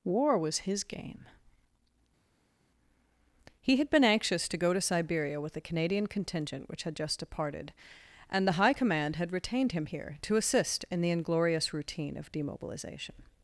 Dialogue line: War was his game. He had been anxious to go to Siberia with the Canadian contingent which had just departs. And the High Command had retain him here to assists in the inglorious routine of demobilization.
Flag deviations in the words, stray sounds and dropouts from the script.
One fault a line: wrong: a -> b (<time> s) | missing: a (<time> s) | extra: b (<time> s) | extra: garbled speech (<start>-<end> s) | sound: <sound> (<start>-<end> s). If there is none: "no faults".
wrong: departs -> departed (7.2 s)
wrong: retain -> retained (9.3 s)
wrong: assists -> assist (10.4 s)